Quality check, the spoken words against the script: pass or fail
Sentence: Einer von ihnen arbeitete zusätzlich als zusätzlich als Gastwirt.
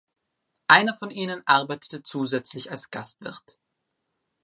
fail